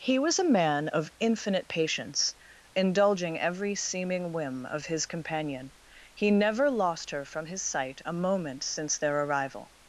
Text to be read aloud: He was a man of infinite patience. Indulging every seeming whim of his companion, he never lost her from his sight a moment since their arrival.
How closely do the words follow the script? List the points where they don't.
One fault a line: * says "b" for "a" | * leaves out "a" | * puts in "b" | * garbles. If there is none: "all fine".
all fine